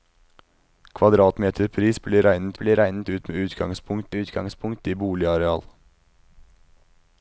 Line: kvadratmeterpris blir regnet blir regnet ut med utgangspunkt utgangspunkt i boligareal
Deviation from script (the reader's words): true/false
false